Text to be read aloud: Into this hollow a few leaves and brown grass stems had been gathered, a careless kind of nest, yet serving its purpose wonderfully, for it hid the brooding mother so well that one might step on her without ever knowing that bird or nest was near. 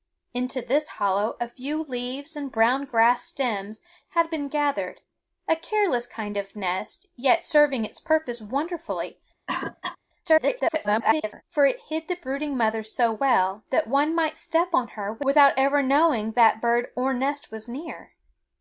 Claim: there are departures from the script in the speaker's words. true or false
true